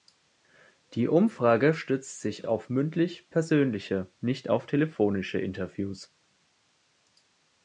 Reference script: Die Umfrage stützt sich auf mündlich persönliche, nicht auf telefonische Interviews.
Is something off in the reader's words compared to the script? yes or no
no